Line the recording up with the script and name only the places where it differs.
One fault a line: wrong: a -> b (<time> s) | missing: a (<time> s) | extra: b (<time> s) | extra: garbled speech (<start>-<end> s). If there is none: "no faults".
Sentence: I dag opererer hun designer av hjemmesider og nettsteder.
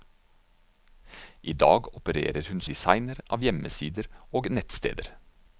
no faults